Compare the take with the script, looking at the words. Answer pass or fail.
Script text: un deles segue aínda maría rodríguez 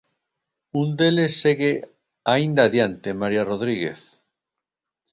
fail